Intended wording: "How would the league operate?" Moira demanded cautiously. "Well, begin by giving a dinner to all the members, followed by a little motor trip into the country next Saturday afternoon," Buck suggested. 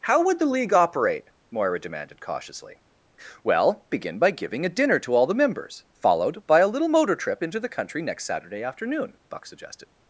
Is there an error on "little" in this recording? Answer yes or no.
no